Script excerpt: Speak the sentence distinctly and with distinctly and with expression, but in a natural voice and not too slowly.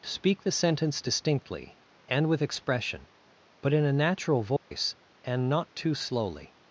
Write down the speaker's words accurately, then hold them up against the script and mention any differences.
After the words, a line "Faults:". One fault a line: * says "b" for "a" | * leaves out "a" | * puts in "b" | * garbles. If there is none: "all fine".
Speak the sentence distinctly and with expression, but in a natural voice and not too slowly.
Faults:
* leaves out "distinctly and with"